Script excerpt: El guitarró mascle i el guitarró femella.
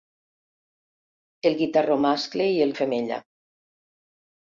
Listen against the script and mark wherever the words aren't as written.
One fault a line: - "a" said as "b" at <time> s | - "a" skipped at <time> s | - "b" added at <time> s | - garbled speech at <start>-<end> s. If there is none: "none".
- "guitarró" skipped at 2.7 s